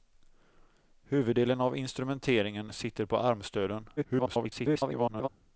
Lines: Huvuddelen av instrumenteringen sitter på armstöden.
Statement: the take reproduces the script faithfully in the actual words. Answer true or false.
false